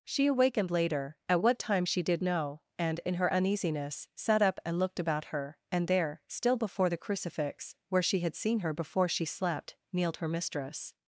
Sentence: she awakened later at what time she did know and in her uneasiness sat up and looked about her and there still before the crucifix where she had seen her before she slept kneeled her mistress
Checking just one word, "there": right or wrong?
right